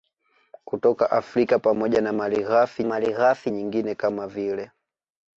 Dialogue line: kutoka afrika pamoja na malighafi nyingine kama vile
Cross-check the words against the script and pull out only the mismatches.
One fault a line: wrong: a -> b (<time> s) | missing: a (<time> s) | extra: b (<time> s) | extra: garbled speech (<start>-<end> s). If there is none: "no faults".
extra: malighafi (2.8 s)